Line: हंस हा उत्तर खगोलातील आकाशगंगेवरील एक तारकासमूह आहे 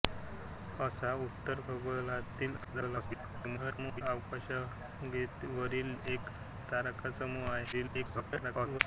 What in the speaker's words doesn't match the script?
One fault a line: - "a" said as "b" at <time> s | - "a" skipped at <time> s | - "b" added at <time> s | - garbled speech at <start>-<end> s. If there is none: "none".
- garbled speech at 2.6-4.0 s
- garbled speech at 7.7-8.8 s